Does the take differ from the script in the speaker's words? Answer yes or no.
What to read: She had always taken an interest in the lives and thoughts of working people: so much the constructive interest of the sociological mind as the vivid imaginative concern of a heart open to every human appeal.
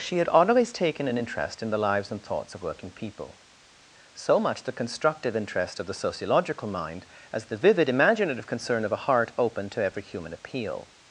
no